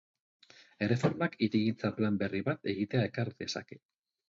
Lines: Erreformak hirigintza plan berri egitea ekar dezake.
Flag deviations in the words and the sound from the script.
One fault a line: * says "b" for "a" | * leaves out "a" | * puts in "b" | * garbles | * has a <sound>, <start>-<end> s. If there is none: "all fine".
* puts in "bat"